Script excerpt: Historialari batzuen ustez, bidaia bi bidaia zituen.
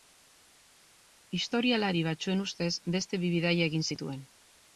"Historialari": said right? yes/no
yes